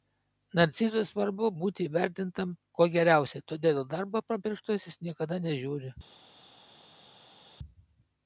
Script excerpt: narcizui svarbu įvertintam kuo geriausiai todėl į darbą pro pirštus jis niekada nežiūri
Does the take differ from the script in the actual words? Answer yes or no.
yes